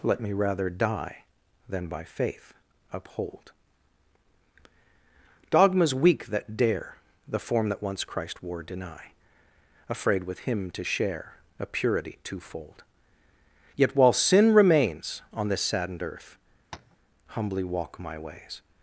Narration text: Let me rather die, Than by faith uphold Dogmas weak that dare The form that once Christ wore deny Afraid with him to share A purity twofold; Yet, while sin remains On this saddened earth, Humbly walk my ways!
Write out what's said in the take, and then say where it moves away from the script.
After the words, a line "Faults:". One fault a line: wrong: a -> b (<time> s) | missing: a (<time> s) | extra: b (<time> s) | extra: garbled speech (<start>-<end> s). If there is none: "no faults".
Let me rather die, Than by faith uphold Dogmas weak that dare The form that once Christ wore deny Afraid with him to share A purity twofold; Yet, while sin remains On this saddened earth, Humbly walk my ways!
Faults:
no faults